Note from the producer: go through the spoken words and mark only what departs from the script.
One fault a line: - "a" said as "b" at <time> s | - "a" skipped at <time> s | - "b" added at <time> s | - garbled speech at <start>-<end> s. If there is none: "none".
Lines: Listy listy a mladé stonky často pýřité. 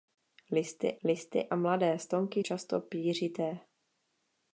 none